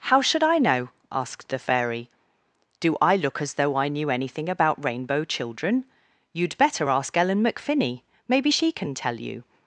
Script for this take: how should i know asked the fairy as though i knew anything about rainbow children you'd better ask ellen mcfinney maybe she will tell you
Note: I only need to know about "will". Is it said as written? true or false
false